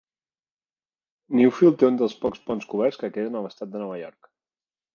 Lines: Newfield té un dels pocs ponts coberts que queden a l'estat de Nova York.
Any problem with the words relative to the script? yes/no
no